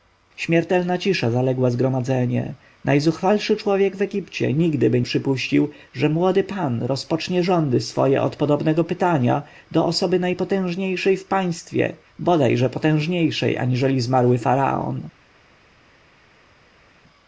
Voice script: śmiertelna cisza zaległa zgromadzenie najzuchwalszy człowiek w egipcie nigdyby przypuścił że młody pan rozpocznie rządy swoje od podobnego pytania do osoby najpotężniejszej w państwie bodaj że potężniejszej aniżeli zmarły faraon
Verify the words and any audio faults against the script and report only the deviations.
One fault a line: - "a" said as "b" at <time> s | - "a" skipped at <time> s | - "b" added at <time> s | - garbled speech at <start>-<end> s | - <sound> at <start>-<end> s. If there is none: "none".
none